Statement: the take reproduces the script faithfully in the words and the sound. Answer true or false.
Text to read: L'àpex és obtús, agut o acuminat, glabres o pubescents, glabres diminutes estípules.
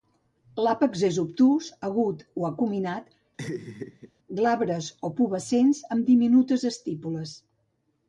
false